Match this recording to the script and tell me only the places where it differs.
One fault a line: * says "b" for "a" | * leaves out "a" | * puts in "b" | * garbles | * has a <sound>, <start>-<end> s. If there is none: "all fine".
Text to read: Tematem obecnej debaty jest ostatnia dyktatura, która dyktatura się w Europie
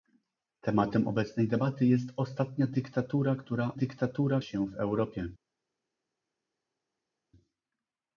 all fine